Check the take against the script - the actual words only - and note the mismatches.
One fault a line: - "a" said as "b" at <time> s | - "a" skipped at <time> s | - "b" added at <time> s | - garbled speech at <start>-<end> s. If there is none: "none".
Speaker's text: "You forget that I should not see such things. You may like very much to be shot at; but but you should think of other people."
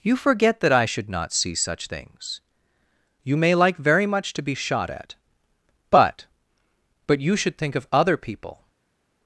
none